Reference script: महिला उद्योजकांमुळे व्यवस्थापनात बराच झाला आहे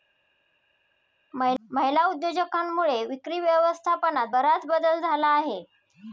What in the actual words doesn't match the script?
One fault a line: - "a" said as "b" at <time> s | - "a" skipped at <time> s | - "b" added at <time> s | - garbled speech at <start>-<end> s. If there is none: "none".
- "विक्री" added at 3.0 s
- "बदल" added at 4.7 s